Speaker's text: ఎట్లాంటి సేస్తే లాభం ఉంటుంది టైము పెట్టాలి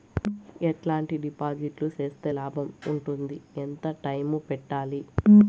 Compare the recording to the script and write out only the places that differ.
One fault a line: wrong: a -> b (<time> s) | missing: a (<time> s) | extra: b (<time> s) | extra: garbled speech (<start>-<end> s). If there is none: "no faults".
extra: డిపాజిట్లు (1.2 s)
extra: ఎంత (3.6 s)